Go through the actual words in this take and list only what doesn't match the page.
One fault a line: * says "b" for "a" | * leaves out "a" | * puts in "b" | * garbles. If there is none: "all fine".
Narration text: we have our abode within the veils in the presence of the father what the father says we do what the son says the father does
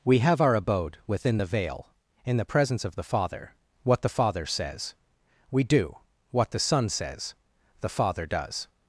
* says "veil" for "veils"